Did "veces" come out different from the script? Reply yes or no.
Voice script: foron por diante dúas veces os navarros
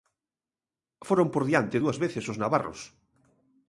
no